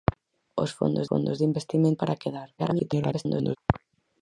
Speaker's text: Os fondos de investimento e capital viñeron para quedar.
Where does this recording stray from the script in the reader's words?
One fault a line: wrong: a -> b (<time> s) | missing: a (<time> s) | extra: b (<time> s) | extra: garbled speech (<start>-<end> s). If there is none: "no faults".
extra: fondos (1.1 s)
missing: e capital viñeron (2.0 s)
extra: garbled speech (2.6-3.6 s)